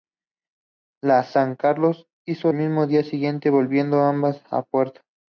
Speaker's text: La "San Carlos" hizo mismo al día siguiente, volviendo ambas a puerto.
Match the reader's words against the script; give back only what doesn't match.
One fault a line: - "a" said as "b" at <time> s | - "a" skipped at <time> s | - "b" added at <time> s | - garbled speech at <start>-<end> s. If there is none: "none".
none